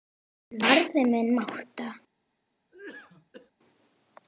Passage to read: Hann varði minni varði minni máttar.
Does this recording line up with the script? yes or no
no